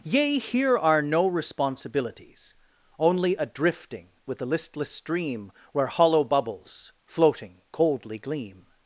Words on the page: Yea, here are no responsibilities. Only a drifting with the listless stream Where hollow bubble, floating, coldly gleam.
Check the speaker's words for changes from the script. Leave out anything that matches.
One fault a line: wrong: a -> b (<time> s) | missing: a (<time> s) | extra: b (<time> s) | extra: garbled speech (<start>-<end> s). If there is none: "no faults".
wrong: bubble -> bubbles (6.2 s)